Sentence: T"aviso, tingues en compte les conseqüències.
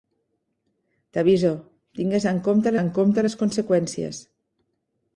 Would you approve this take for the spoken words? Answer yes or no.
no